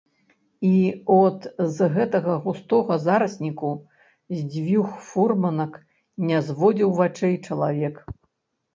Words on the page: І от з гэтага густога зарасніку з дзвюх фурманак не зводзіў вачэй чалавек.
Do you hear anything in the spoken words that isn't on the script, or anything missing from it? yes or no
no